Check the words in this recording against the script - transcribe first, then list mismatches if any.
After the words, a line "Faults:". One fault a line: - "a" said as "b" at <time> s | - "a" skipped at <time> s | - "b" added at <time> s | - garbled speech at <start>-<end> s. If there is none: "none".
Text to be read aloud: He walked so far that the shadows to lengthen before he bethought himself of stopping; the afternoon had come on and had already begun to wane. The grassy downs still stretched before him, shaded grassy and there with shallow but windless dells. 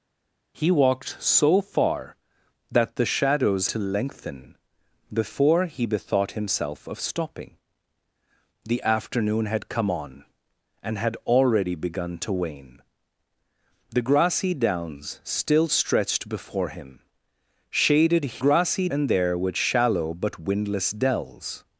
He walked so far that the shadows to lengthen before he bethought himself of stopping; the afternoon had come on and had already begun to wane. The grassy downs still stretched before him, shaded grassy and there with shallow but windless dells.
Faults:
none